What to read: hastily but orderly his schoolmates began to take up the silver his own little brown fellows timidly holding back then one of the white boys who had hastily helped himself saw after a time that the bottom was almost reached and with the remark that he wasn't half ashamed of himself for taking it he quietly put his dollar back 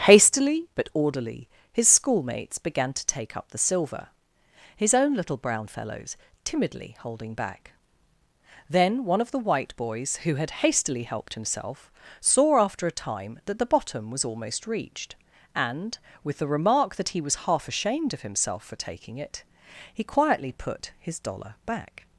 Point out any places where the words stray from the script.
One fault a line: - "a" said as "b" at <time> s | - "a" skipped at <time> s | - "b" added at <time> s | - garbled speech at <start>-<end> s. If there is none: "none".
- "wasn't" said as "was" at 17.2 s